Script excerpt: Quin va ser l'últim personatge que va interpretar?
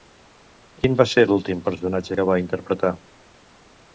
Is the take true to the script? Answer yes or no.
yes